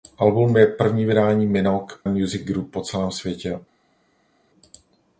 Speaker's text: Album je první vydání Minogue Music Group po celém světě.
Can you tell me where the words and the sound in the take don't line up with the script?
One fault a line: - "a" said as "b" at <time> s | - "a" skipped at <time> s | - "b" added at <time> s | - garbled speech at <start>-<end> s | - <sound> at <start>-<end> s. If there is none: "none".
none